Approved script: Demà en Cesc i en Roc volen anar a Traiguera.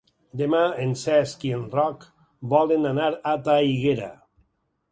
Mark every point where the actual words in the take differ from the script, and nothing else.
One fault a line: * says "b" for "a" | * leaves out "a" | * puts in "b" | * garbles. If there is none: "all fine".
all fine